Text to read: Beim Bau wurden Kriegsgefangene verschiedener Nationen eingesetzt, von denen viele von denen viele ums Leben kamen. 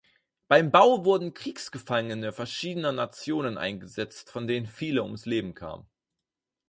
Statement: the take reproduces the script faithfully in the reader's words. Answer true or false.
false